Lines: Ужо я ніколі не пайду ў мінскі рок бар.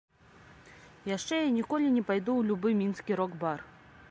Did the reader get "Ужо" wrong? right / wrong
wrong